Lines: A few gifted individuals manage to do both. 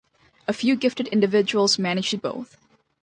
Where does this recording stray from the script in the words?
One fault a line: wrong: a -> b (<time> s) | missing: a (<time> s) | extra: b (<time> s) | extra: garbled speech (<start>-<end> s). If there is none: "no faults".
missing: do (2.2 s)